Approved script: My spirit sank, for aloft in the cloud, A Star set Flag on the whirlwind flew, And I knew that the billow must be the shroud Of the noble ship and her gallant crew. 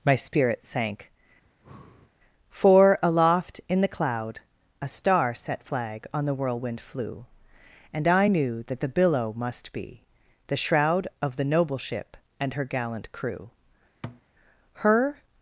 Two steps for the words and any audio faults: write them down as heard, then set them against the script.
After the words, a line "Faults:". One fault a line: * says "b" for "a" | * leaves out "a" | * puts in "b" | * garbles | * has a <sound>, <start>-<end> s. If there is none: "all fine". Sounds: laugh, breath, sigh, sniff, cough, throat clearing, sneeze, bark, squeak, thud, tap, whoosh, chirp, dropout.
My spirit sank, for aloft in the cloud, A Star set Flag on the whirlwind flew, And I knew that the billow must be the shroud Of the noble ship and her gallant crew. Her
Faults:
* has a breath, 1.4-2.1 s
* has a thud, 14.0-14.2 s
* puts in "Her"